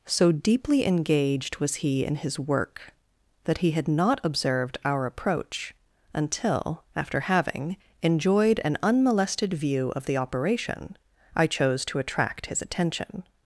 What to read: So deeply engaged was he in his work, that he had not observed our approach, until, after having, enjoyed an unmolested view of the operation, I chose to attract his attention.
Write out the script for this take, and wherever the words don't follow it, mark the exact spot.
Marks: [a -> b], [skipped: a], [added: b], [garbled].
So deeply engaged was he in his work, that he had not observed our approach, until, after having, enjoyed an unmolested view of the operation, I chose to attract his attention.